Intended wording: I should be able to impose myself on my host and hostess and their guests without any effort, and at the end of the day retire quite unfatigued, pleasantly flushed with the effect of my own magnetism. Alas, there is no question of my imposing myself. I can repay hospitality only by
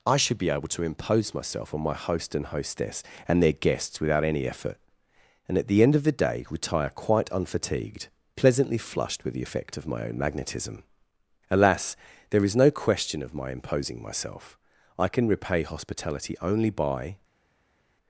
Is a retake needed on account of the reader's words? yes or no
no